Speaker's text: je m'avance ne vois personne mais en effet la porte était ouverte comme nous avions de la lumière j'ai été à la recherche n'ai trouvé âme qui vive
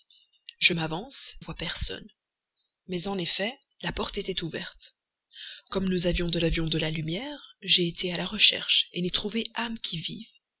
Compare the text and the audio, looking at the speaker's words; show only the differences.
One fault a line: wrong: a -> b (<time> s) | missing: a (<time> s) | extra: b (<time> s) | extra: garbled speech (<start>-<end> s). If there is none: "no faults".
missing: ne (1.4 s)
extra: avions de (6.4 s)